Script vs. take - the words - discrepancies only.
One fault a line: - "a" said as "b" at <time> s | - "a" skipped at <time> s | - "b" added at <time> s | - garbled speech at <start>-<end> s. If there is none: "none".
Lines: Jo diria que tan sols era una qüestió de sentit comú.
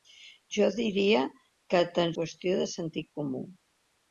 - "sols era una" skipped at 2.1 s